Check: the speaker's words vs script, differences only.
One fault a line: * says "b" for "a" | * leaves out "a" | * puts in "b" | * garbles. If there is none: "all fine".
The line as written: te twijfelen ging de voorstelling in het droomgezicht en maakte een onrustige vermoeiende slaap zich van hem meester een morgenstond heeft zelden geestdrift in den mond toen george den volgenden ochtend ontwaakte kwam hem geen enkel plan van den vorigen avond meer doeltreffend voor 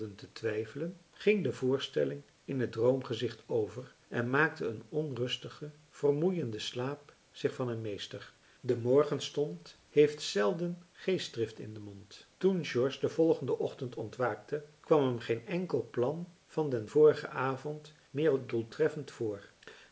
* puts in "over"
* says "de" for "een"